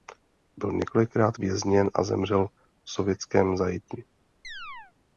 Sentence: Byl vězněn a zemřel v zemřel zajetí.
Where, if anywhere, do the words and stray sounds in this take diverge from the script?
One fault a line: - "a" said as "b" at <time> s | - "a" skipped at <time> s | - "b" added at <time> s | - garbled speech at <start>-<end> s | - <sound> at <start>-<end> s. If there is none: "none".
- "několikrát" added at 0.7 s
- "zemřel" said as "sovětském" at 2.9 s
- chirp at 4.4-4.9 s